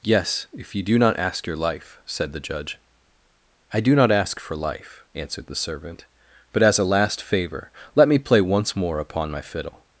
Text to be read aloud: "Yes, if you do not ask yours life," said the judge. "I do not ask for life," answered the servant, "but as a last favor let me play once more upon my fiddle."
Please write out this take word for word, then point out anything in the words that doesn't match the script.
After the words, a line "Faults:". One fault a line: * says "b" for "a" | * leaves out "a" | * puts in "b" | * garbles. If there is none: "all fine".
"Yes, if you do not ask your life," said the judge. "I do not ask for life," answered the servant, "but as a last favor let me play once more upon my fiddle."
Faults:
* says "your" for "yours"